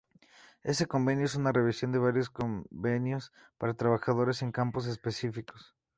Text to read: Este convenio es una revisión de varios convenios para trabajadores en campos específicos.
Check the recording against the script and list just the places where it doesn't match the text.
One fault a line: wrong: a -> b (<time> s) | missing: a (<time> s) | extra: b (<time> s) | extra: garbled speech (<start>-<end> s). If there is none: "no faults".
no faults